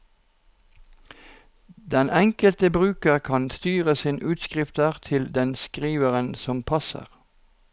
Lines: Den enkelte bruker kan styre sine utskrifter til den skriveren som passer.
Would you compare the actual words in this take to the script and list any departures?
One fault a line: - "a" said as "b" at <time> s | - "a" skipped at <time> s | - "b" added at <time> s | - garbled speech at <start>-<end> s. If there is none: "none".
none